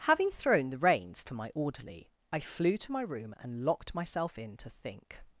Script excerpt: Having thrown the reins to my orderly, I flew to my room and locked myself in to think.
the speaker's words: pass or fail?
pass